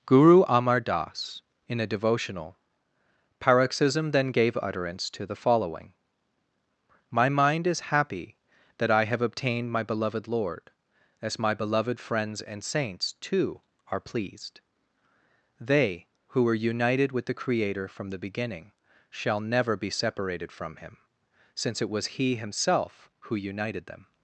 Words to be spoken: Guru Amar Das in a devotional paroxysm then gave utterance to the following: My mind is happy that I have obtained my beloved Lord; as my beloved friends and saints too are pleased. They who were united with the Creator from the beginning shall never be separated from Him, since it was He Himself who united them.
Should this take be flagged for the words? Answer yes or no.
no